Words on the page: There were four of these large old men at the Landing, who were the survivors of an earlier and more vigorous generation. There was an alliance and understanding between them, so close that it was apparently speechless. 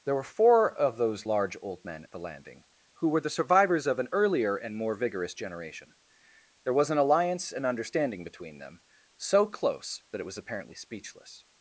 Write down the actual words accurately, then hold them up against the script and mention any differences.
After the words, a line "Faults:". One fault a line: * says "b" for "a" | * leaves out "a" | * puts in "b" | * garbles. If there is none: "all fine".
There were four of those large old men at the Landing, who were the survivors of an earlier and more vigorous generation. There was an alliance and understanding between them, so close that it was apparently speechless.
Faults:
* says "those" for "these"